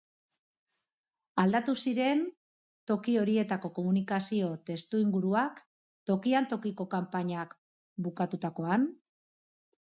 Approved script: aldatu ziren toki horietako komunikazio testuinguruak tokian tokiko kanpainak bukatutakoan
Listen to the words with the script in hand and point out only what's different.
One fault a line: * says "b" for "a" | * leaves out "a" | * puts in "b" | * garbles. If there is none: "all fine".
all fine